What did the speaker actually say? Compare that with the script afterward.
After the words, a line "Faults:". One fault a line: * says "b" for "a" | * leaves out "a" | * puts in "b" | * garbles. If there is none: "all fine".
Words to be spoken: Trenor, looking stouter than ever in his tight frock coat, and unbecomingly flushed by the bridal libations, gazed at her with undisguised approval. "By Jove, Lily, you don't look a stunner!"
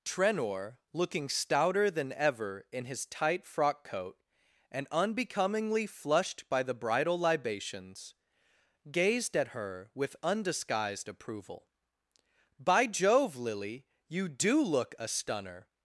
Trenor, looking stouter than ever in his tight frock coat, and unbecomingly flushed by the bridal libations, gazed at her with undisguised approval. "By Jove, Lily, you do look a stunner!"
Faults:
* says "do" for "don't"